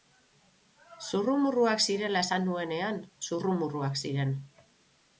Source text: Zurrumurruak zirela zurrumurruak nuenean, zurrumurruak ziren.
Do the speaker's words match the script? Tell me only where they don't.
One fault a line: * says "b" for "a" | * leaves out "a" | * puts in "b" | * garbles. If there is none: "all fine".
* says "esan" for "zurrumurruak"